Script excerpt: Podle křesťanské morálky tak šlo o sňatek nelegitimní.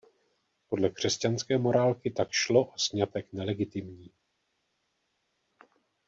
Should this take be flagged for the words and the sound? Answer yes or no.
no